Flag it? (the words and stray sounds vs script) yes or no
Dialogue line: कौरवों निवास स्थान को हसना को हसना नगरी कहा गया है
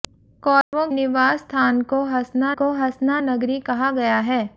yes